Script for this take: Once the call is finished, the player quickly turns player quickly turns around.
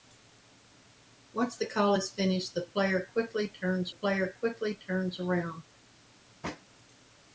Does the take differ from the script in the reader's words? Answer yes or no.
no